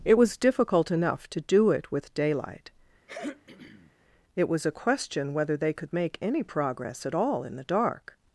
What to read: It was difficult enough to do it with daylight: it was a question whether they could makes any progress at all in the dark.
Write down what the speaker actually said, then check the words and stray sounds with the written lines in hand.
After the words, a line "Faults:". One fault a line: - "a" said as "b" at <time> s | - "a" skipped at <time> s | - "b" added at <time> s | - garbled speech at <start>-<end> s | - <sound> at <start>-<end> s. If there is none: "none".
It was difficult enough to do it with daylight: it was a question whether they could make any progress at all in the dark.
Faults:
- throat clearing at 3.1-3.9 s
- "makes" said as "make" at 5.9 s